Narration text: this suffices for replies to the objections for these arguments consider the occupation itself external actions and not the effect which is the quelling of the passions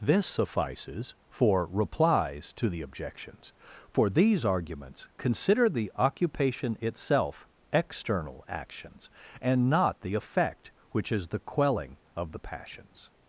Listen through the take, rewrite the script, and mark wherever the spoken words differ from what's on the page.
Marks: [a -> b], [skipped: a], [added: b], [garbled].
this suffices for replies to the objections for these arguments consider the occupation itself external actions and not the effect which is the quelling of the passions